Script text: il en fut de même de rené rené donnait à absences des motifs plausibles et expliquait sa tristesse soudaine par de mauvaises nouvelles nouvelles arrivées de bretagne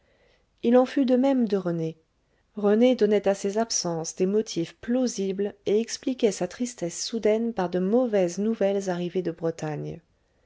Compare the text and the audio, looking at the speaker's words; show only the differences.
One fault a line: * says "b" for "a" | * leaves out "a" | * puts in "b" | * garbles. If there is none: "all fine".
* puts in "ses"
* leaves out "nouvelles"